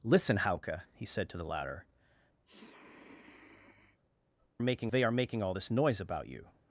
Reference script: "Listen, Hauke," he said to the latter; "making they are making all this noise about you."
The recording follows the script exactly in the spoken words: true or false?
true